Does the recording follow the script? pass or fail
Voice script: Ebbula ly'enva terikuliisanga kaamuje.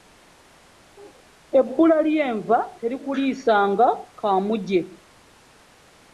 pass